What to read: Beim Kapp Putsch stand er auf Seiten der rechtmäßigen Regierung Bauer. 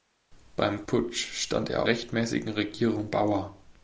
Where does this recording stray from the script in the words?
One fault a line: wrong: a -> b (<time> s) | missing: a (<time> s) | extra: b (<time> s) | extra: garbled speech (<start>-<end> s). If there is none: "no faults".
missing: Kapp (0.8 s)
missing: auf Seiten der (1.9 s)